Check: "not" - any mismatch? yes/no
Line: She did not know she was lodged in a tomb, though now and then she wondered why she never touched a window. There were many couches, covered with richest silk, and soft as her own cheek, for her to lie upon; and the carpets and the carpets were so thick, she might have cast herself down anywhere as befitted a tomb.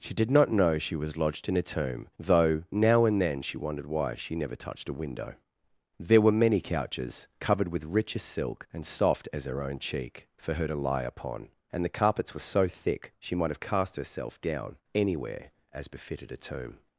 no